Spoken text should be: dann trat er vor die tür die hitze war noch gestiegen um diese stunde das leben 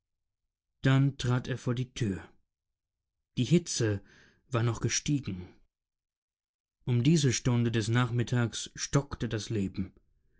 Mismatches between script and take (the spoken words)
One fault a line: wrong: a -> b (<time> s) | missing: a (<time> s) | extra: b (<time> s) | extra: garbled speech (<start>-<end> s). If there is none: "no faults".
extra: des nachmittags stockte (7.7 s)